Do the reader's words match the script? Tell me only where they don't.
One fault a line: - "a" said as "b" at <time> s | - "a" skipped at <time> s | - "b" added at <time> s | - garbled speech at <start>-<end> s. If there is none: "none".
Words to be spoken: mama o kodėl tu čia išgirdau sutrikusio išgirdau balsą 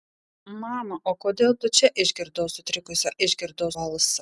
none